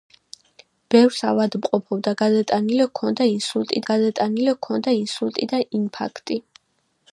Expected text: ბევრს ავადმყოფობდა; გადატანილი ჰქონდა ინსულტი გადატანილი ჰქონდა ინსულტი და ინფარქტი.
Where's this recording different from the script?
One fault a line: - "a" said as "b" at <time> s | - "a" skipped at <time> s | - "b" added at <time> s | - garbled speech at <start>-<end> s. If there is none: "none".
none